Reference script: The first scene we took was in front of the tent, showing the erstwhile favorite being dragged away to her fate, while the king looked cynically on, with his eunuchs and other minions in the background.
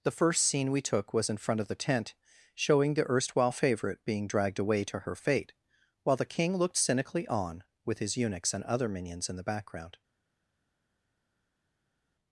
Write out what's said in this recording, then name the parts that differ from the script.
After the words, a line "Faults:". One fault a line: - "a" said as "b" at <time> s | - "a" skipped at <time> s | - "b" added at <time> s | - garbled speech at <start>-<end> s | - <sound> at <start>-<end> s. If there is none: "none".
The first scene we took was in front of the tent, showing the erstwhile favorite being dragged away to her fate, while the king looked cynically on, with his eunuchs and other minions in the background.
Faults:
none